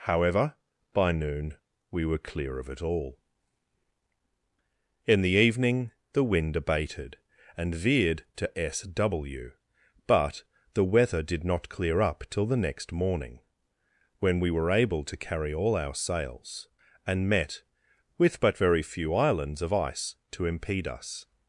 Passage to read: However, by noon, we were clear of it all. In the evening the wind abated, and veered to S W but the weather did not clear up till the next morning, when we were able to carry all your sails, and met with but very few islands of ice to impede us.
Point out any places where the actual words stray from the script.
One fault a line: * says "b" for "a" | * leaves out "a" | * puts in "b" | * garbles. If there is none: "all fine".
* says "our" for "your"